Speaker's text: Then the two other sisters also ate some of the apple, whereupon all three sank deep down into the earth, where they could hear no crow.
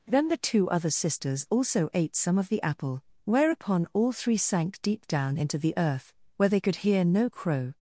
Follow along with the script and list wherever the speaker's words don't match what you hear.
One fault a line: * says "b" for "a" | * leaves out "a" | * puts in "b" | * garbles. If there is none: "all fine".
all fine